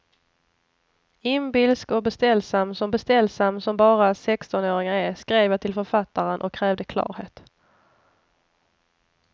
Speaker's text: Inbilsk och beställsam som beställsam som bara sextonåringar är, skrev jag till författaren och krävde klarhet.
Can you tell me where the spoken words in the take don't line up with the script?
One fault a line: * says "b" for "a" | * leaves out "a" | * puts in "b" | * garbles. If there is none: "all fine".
all fine